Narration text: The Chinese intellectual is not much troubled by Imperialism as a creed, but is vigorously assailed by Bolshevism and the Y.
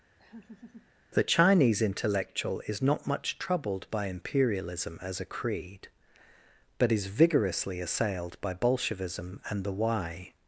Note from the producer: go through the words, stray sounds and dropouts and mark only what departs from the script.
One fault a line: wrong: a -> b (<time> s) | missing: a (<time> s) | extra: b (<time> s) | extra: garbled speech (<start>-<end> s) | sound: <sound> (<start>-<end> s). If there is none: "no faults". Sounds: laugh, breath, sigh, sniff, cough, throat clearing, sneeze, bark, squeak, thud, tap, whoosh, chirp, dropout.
sound: laugh (0.2-0.9 s)